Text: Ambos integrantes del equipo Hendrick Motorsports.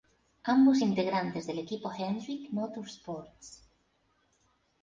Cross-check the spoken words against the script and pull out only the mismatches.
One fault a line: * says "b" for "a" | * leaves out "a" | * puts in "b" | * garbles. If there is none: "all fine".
all fine